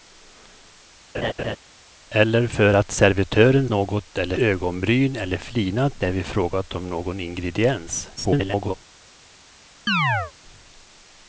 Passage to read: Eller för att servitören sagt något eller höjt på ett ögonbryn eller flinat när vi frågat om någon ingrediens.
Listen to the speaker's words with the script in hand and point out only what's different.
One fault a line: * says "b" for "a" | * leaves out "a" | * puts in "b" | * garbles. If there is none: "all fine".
* leaves out "sagt"
* leaves out "höjt på ett"
* garbles